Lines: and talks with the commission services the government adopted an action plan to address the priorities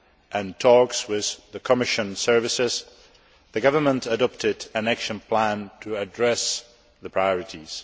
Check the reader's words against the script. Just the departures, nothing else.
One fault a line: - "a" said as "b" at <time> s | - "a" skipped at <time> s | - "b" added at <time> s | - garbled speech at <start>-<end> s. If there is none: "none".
none